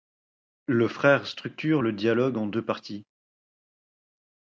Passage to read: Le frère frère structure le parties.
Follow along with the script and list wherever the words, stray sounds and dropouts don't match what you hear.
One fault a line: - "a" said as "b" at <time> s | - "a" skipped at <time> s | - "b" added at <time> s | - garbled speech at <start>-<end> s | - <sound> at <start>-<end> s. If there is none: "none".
- "frère" skipped at 1.3 s
- "dialogue en deux" added at 1.9 s